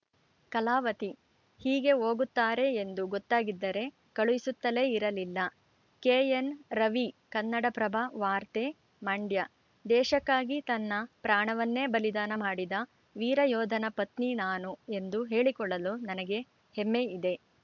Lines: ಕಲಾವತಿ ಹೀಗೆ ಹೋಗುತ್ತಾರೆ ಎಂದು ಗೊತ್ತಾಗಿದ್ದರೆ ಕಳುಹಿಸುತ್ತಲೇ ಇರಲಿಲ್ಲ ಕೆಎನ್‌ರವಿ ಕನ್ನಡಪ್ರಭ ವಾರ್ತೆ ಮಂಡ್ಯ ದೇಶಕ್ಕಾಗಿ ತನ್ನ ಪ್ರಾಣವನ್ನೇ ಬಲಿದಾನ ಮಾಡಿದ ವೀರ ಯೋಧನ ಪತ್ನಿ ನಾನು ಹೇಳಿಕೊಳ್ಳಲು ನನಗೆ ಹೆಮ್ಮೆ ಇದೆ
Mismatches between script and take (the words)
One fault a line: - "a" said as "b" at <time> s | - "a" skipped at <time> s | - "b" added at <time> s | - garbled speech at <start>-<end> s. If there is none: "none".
- "ಎಂದು" added at 14.9 s